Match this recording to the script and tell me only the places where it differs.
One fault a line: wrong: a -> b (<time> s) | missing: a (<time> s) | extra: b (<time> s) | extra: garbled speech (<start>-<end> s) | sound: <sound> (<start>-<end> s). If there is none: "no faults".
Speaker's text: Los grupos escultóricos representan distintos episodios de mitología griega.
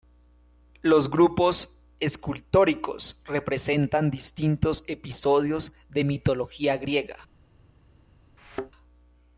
sound: thud (8.4-8.7 s)